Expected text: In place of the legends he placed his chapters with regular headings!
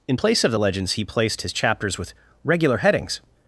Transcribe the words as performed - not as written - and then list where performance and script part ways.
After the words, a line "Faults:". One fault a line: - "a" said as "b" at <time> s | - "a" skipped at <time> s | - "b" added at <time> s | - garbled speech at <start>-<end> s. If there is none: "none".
In place of the legends he placed his chapters with regular headings!
Faults:
none